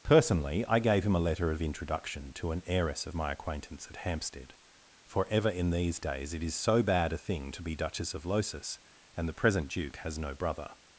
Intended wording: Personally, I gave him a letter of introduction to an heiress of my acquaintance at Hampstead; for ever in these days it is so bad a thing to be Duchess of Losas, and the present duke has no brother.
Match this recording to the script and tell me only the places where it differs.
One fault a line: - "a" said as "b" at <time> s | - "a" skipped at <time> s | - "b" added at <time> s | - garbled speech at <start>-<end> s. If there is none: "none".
none